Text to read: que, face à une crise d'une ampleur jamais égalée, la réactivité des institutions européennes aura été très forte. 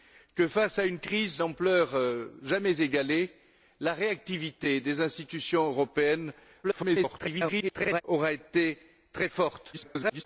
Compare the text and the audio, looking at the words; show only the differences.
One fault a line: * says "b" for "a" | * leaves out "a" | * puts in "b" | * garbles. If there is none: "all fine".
* leaves out "d'une"
* garbles
* garbles